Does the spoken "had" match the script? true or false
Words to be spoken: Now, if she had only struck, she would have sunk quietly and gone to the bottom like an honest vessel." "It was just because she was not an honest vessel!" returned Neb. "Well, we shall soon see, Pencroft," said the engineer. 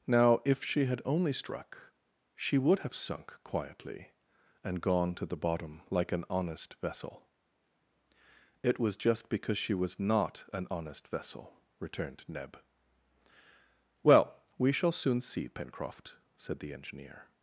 true